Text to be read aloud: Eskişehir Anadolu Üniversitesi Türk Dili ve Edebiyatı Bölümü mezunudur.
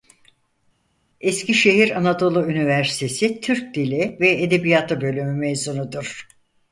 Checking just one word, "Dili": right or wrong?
right